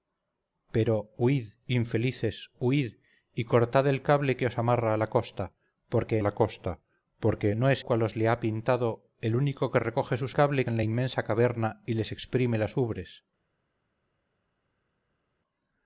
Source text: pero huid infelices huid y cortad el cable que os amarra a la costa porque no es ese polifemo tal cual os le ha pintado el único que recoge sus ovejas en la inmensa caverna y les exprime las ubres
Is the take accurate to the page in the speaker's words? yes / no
no